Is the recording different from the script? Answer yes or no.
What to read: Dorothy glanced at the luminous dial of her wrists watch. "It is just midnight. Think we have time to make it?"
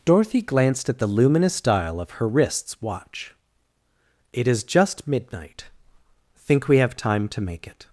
no